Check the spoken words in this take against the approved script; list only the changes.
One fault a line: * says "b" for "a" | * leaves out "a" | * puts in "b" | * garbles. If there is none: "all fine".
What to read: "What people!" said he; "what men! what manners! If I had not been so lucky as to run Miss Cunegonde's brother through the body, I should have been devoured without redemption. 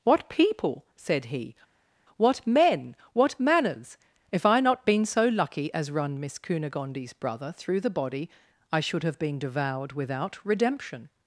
* leaves out "had"
* leaves out "to"